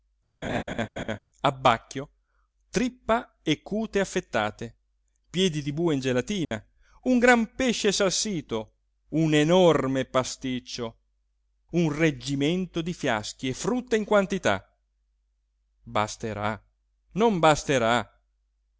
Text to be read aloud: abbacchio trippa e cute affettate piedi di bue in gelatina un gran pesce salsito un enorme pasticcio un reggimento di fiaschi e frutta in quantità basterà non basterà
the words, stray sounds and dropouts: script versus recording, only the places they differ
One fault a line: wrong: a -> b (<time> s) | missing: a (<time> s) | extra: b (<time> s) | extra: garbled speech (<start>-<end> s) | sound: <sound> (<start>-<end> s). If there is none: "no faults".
sound: laugh (0.4-1.2 s)
sound: dropout (6.4-6.5 s)